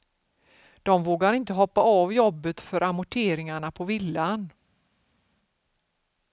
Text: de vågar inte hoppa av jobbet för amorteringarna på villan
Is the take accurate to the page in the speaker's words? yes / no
yes